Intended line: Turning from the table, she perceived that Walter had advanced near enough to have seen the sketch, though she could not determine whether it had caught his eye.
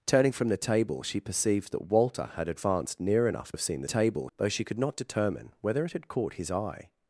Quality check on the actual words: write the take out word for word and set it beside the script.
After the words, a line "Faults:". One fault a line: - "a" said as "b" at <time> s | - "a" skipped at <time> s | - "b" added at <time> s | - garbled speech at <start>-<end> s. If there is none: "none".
Turning from the table, she perceived that Walter had advanced near enough have seen the table, though she could not determine whether it had caught his eye.
Faults:
- "to" skipped at 3.5 s
- "sketch" said as "table" at 3.8 s